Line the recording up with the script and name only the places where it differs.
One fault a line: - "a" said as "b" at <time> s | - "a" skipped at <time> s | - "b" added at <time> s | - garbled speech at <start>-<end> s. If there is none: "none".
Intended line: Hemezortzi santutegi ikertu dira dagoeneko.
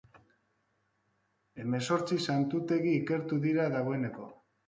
none